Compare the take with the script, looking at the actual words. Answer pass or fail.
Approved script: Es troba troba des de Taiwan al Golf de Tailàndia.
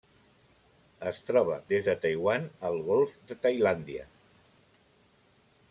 fail